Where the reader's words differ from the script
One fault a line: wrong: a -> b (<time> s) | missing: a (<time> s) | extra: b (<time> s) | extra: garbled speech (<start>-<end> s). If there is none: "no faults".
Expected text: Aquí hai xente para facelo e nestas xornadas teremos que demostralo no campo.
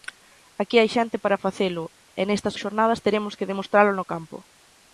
no faults